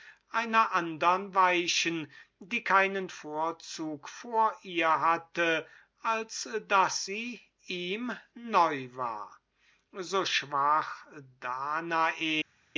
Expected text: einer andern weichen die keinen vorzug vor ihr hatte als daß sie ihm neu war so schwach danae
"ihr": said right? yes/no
yes